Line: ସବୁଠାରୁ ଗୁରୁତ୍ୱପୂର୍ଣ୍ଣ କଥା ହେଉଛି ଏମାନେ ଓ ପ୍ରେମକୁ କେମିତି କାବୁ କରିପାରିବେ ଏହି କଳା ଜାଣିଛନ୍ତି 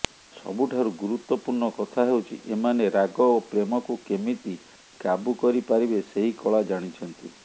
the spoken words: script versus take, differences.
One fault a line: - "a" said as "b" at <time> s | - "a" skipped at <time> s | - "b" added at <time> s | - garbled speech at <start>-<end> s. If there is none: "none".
- "ରାଗ" added at 3.0 s
- "ଏହି" said as "ସେହି" at 6.1 s